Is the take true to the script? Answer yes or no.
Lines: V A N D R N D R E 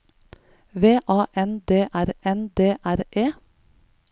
yes